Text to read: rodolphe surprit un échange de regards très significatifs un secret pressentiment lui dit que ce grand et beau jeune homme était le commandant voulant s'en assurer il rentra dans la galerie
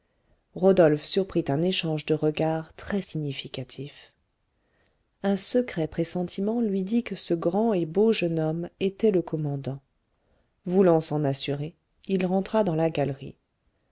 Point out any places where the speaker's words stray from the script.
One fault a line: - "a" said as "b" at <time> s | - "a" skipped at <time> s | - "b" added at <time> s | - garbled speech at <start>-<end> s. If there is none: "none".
none